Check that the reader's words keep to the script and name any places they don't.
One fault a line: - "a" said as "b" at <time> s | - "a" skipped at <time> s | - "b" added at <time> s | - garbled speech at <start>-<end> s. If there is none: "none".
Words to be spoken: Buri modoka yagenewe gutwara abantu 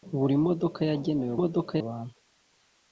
- "gutwara" said as "modoka" at 1.4 s